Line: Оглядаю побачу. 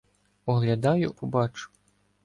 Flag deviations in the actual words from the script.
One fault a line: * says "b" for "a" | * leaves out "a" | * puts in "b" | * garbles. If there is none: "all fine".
all fine